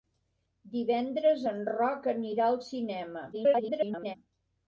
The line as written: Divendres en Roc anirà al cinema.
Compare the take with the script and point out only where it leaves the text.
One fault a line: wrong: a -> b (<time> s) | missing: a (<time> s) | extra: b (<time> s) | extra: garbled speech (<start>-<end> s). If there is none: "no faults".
extra: garbled speech (3.3-4.2 s)